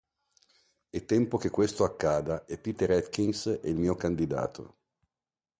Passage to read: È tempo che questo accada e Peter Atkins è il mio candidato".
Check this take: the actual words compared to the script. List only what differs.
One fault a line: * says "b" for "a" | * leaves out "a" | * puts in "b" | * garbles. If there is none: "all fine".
all fine